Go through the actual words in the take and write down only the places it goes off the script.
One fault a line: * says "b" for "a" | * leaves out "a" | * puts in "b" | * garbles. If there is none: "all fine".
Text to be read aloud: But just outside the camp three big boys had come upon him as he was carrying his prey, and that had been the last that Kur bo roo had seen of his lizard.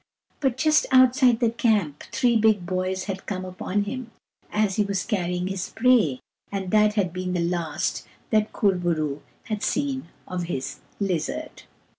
all fine